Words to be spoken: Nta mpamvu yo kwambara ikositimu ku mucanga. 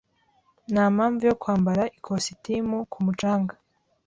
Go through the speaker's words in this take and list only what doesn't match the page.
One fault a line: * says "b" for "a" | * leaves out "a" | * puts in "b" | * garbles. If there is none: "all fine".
all fine